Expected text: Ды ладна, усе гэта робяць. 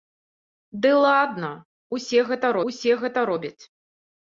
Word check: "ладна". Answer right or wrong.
right